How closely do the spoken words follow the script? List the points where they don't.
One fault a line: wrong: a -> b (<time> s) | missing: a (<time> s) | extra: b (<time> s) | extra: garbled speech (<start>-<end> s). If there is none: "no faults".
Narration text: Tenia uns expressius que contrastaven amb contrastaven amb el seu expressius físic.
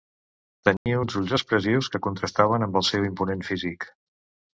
extra: ulls (1.2 s)
missing: contrastaven amb (2.8 s)
wrong: expressius -> imponent (3.1 s)